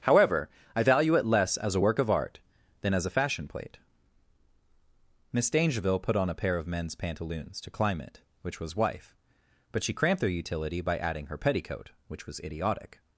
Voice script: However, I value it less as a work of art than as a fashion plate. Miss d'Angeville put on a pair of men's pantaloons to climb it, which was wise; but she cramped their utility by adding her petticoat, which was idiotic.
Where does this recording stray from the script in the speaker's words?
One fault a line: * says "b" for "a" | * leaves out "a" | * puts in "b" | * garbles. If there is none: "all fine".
* says "wife" for "wise"